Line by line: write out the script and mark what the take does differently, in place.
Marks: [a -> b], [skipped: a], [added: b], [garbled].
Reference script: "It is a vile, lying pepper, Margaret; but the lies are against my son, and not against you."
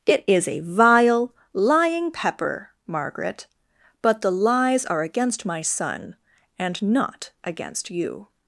"It is a vile, lying pepper, Margaret; but the lies are against my son, and not against you."